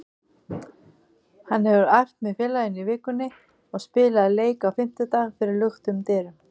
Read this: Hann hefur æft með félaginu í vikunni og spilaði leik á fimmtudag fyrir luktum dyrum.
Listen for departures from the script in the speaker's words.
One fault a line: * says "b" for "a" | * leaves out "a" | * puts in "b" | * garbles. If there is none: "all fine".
all fine